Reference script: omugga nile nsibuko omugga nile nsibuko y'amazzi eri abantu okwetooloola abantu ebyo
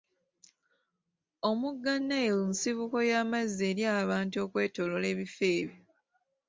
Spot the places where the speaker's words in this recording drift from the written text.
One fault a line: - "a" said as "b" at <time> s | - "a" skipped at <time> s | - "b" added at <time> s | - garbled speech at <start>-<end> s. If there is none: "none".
- "omugga nile nsibuko" skipped at 3.0 s
- "abantu" said as "ebifo" at 5.1 s